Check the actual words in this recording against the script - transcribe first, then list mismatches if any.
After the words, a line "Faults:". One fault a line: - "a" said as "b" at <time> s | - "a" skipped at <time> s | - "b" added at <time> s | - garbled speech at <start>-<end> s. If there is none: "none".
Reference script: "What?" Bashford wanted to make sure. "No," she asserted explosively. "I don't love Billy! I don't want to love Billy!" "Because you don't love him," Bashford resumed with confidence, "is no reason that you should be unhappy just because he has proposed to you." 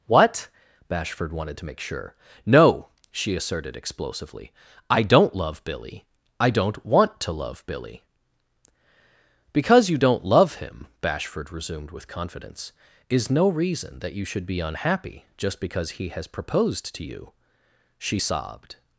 "What?" Bashford wanted to make sure. "No," she asserted explosively. "I don't love Billy! I don't want to love Billy!" "Because you don't love him," Bashford resumed with confidence, "is no reason that you should be unhappy just because he has proposed to you." She sobbed
Faults:
- "She sobbed" added at 18.0 s